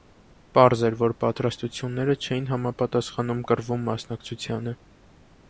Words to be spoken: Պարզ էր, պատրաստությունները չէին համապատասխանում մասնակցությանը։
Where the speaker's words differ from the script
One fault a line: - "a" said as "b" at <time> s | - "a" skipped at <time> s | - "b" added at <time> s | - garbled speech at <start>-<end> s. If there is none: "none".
- "որ" added at 1.0 s
- "կռվում" added at 3.5 s